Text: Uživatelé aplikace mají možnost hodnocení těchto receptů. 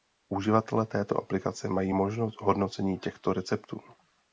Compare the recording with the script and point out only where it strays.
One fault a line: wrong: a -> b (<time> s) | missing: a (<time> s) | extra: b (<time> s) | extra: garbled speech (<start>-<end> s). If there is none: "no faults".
extra: této (0.8 s)